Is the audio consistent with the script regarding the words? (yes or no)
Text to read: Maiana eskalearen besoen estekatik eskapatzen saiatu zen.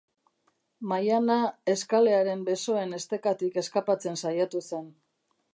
yes